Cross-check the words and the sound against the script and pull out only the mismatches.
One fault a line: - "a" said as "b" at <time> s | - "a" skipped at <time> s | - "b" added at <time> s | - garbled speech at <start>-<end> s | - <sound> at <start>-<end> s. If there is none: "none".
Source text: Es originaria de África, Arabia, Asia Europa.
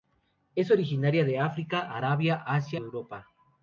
none